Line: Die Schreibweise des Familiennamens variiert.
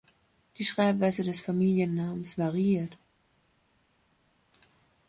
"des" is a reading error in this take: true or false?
false